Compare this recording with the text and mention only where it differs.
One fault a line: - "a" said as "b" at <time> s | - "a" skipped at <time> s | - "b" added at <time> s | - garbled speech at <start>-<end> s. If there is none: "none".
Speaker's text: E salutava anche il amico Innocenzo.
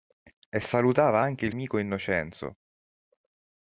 none